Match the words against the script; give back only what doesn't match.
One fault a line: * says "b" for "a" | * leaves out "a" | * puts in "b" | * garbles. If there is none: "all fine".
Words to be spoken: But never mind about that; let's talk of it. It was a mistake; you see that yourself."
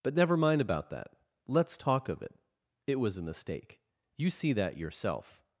all fine